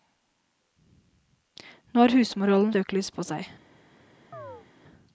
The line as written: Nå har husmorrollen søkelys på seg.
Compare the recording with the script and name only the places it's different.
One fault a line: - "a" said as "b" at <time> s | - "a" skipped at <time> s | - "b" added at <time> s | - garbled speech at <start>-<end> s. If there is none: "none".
none